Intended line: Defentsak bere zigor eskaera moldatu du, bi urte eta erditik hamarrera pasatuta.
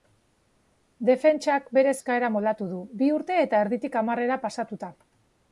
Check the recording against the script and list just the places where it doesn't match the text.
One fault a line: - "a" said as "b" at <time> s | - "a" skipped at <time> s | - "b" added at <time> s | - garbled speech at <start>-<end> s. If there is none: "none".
- "zigor" skipped at 1.9 s